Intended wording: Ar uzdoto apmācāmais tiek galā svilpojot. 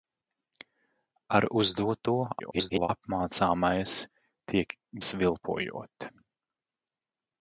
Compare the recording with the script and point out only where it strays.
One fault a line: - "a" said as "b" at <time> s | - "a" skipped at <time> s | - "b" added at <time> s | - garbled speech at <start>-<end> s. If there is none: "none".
- garbled speech at 2.4-2.9 s
- "galā" skipped at 4.7 s